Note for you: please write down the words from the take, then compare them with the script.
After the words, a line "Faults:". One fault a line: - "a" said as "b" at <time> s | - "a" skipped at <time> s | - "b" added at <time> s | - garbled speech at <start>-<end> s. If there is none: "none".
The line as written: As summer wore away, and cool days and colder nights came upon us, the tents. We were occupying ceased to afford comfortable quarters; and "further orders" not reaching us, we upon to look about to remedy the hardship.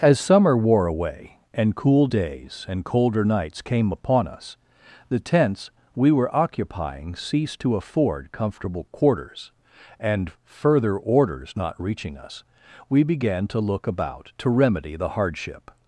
As summer wore away, and cool days and colder nights came upon us, the tents. We were occupying ceased to afford comfortable quarters; and "further orders" not reaching us, we began to look about to remedy the hardship.
Faults:
- "upon" said as "began" at 13.0 s